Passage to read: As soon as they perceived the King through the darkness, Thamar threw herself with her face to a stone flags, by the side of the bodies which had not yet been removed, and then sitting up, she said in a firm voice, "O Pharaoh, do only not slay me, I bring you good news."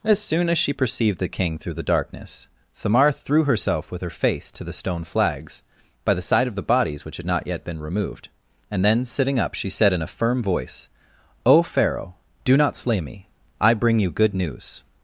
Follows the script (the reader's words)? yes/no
no